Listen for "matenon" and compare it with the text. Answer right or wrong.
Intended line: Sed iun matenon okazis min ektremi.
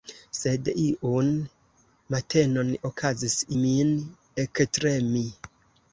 right